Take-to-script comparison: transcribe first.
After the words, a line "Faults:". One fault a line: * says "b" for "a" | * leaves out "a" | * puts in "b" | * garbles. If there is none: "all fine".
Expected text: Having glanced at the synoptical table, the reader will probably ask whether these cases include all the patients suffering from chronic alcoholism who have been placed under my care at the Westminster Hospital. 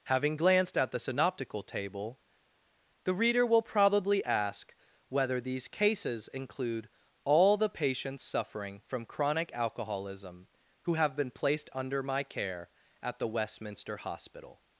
Having glanced at the synoptical table, the reader will probably ask whether these cases include all the patients suffering from chronic alcoholism who have been placed under my care at the Westminster Hospital.
Faults:
all fine